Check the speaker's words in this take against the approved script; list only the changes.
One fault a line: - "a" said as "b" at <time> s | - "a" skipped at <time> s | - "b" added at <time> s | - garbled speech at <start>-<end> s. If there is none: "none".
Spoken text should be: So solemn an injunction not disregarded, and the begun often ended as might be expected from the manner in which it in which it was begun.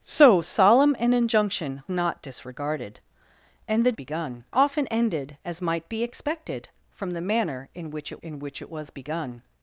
none